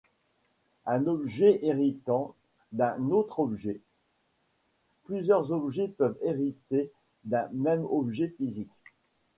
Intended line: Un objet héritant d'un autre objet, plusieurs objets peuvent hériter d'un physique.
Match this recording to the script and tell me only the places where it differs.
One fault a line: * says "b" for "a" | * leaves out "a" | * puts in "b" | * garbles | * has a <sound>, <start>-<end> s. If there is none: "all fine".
* puts in "même objet"